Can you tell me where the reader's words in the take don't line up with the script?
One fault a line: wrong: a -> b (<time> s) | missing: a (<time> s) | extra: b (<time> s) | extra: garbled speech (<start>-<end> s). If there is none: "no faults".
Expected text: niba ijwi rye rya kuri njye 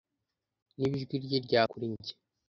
no faults